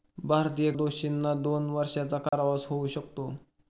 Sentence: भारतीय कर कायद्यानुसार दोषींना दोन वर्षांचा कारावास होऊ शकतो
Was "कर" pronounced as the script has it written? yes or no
no